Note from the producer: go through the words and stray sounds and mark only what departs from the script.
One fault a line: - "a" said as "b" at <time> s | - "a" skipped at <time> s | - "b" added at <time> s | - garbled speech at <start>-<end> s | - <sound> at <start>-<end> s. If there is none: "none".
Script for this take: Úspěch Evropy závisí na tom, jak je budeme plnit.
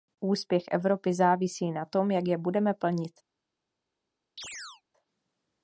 - chirp at 4.4-4.8 s